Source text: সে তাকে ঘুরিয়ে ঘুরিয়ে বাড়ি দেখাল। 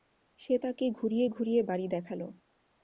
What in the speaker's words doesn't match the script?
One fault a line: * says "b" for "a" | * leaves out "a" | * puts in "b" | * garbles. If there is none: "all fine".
all fine